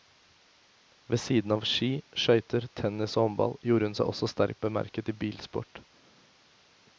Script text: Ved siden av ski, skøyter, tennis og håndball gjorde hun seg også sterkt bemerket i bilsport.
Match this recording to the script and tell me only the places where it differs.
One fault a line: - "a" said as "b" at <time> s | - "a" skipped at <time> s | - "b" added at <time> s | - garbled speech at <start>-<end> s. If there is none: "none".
none